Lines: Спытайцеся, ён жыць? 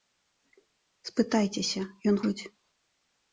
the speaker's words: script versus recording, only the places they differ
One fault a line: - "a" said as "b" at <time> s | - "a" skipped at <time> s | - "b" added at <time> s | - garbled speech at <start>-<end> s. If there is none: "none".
none